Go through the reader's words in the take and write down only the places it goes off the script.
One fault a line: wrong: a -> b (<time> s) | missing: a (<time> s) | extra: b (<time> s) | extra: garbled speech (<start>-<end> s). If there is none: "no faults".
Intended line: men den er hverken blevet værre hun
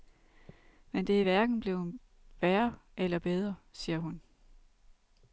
wrong: den -> det (1.1 s)
extra: eller bedre siger (3.0 s)